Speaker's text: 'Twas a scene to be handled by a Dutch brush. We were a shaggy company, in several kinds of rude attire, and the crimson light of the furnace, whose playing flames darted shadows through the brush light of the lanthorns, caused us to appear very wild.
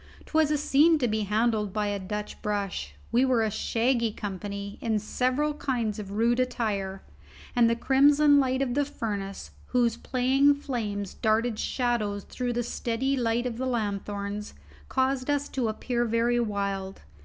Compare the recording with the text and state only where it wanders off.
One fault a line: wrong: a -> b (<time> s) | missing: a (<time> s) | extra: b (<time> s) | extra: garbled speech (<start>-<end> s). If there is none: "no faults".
wrong: brush -> steady (12.6 s)